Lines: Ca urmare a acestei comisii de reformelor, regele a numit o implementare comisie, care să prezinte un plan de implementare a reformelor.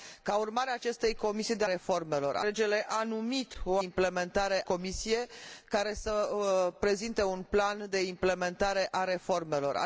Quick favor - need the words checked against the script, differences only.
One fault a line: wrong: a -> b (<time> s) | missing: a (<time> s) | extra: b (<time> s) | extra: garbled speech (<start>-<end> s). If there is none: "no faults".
no faults